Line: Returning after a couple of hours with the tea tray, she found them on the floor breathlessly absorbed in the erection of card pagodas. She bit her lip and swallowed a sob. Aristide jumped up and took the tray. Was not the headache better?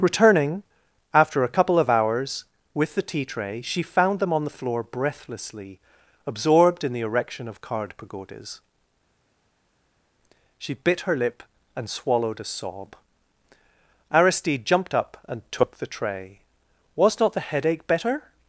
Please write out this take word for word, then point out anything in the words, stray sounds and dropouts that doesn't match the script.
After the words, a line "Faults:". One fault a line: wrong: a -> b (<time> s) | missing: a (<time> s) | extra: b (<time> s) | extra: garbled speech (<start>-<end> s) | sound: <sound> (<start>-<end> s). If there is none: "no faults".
Returning after a couple of hours with the tea tray, she found them on the floor breathlessly absorbed in the erection of card pagodas. She bit her lip and swallowed a sob. Aristide jumped up and took the tray. Was not the headache better?
Faults:
no faults